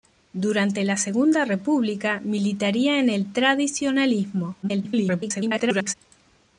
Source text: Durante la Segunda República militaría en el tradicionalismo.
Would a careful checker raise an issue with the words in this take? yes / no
yes